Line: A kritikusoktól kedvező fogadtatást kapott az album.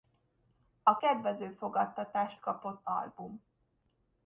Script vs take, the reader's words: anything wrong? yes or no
yes